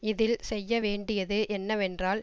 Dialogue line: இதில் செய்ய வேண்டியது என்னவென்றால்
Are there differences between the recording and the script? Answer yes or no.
no